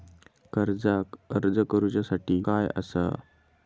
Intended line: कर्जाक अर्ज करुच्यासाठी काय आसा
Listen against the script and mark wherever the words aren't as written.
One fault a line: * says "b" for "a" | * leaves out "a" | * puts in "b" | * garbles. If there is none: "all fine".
all fine